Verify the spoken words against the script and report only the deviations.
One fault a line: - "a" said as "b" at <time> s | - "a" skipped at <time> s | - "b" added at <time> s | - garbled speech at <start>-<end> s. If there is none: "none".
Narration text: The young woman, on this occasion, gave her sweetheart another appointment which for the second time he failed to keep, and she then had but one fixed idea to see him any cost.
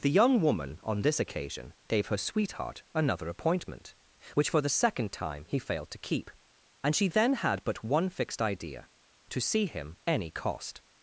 none